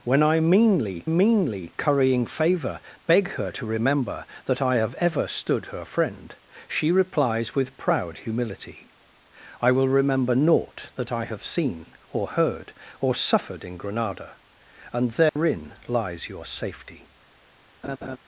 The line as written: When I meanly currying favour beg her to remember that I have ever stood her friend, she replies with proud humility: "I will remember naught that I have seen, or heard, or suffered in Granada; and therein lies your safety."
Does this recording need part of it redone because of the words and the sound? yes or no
yes